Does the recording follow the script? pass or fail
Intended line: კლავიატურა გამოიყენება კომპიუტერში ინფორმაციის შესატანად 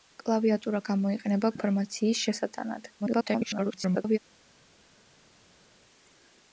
fail